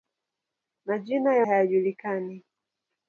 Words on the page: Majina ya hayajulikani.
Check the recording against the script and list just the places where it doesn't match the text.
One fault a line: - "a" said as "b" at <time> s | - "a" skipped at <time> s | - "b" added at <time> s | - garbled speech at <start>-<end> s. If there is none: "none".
none